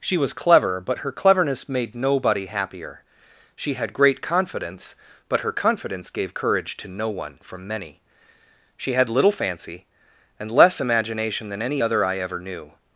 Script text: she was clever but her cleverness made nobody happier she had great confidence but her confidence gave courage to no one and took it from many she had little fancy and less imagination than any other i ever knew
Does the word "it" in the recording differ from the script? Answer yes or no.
yes